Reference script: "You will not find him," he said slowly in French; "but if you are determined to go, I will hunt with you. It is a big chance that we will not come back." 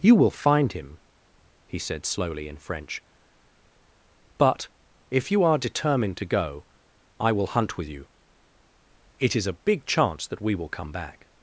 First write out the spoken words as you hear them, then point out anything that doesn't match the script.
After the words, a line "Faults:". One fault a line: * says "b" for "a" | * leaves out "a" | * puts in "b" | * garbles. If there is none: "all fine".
"You will find him," he said slowly in French; "but if you are determined to go, I will hunt with you. It is a big chance that we will come back."
Faults:
* leaves out "not"
* leaves out "not"